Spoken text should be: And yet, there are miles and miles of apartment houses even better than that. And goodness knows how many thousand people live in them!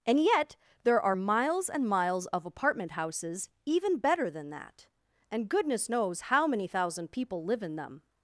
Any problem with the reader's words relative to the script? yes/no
no